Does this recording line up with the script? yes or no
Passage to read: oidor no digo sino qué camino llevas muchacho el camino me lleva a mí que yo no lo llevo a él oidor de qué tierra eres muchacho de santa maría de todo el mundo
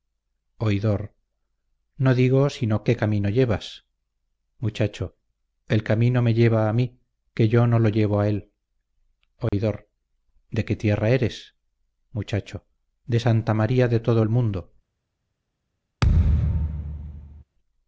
yes